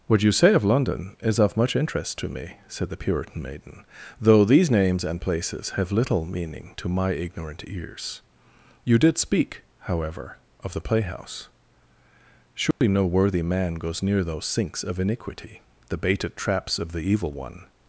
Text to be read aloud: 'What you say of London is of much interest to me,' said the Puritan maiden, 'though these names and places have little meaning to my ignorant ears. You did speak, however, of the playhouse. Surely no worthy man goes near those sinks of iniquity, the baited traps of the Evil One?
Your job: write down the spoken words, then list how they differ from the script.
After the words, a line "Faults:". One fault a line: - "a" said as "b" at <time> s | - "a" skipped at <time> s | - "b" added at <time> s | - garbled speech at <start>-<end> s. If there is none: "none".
'What you say of London is of much interest to me,' said the Puritan maiden, 'though these names and places have little meaning to my ignorant ears. You did speak, however, of the playhouse. Surely no worthy man goes near those sinks of iniquity, the baited traps of the Evil One?
Faults:
none